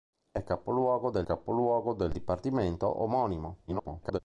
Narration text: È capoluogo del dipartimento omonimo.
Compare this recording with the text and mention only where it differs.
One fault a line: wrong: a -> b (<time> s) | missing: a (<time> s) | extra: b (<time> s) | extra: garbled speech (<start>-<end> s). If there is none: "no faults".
extra: capoluogo del (1.2 s)
extra: garbled speech (3.7-4.2 s)